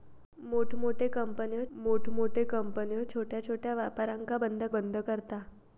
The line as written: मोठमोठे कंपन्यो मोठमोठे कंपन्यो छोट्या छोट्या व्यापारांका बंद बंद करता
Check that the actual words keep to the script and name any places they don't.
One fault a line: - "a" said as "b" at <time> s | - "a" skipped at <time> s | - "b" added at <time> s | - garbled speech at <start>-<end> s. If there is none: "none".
none